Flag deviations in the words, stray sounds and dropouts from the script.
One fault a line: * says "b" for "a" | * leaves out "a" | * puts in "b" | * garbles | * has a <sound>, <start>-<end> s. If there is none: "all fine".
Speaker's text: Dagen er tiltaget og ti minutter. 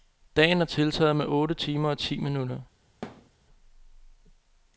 * puts in "med otte timer"
* has a thud, 3.0-3.3 s